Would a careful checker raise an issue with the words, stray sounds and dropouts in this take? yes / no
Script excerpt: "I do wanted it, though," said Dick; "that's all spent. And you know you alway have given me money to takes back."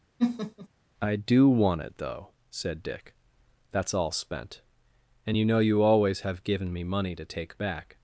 yes